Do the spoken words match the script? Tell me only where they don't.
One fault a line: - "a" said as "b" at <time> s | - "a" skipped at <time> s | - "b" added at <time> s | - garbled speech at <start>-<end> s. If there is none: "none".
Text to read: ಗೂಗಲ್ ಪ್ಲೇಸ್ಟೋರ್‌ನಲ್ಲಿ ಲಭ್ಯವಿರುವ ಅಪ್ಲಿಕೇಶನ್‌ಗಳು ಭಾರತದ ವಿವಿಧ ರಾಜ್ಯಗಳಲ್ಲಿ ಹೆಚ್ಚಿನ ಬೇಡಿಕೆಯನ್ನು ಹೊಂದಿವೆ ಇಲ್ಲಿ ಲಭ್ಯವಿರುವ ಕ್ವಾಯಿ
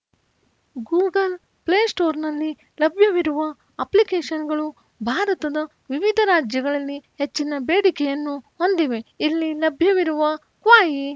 none